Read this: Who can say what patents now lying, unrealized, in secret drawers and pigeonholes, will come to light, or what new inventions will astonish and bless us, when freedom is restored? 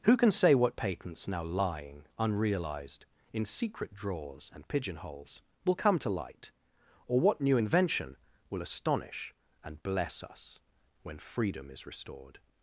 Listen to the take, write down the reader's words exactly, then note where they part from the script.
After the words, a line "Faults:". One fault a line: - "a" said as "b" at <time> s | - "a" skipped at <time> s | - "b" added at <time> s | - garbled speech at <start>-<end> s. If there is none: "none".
Who can say what patents now lying, unrealized, in secret drawers and pigeonholes, will come to light, or what new invention will astonish and bless us, when freedom is restored?
Faults:
- "inventions" said as "invention" at 7.5 s